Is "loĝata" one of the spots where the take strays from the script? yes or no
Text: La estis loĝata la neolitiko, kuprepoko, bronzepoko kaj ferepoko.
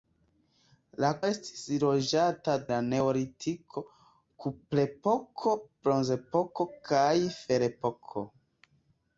no